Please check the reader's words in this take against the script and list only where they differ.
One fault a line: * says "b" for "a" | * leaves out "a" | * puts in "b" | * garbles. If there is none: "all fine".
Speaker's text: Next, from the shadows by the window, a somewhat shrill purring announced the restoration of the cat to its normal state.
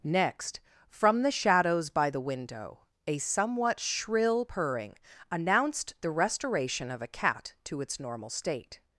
* says "a" for "the"